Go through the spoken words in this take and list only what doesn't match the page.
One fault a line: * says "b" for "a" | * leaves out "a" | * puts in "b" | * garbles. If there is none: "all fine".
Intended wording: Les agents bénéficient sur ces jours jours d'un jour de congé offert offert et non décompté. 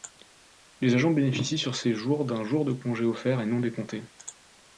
* leaves out "jours"
* leaves out "offert"